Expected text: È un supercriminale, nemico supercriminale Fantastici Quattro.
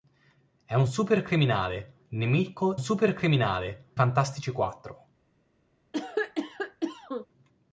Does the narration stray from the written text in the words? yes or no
no